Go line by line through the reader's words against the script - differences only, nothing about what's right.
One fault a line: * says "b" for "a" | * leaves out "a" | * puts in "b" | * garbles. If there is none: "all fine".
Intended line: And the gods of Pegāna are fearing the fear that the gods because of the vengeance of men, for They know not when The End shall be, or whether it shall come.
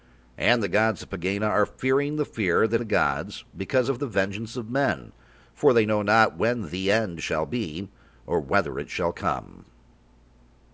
all fine